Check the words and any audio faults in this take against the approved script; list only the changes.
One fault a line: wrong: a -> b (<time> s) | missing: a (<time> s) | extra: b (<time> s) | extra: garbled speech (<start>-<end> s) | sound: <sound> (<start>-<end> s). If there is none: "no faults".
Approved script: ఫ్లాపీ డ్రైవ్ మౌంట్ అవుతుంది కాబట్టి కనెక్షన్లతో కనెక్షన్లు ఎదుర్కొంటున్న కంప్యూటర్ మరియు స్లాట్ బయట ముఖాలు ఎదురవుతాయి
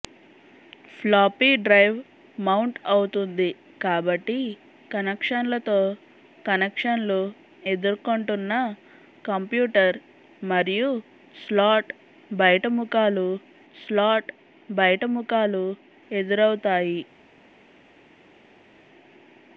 extra: స్లాట్ బయట ముఖాలు (13.7 s)